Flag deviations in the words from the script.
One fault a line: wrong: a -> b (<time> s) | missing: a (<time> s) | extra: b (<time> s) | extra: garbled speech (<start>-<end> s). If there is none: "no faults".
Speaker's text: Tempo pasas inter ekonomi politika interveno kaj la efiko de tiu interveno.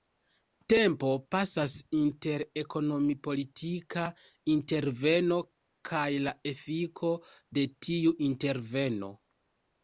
no faults